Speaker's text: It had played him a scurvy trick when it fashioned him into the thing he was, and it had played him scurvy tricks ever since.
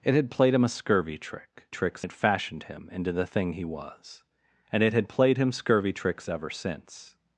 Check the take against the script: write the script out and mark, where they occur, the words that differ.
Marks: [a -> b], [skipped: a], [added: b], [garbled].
It had played him a scurvy trick [when -> tricks] it fashioned him into the thing he was, and it had played him scurvy tricks ever since.